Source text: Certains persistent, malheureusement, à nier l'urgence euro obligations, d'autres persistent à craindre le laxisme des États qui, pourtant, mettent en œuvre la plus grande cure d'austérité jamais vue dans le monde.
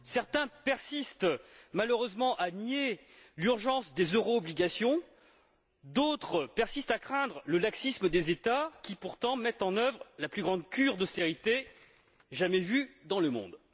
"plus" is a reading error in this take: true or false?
false